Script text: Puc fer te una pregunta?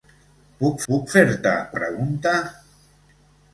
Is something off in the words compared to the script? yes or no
yes